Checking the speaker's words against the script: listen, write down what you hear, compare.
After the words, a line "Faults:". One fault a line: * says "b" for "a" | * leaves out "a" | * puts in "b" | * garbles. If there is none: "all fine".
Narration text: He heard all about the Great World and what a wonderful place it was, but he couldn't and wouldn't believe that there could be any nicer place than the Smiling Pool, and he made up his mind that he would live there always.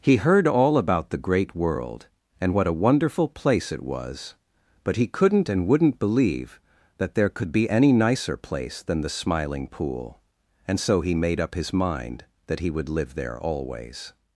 He heard all about the Great World and what a wonderful place it was, but he couldn't and wouldn't believe that there could be any nicer place than the Smiling Pool, and so he made up his mind that he would live there always.
Faults:
* puts in "so"